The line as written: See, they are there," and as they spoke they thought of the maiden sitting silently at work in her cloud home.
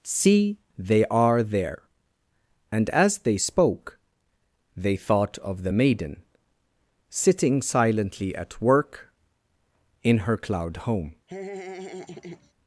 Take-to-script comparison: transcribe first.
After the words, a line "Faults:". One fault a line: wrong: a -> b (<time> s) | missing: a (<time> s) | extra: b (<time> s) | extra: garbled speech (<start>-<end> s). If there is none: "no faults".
See, they are there," and as they spoke they thought of the maiden sitting silently at work in her cloud home.
Faults:
no faults